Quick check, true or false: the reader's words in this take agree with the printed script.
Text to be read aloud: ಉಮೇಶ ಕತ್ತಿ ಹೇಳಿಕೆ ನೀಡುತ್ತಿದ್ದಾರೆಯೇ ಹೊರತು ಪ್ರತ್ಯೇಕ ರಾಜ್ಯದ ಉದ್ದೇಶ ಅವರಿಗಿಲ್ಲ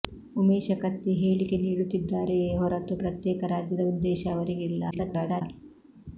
false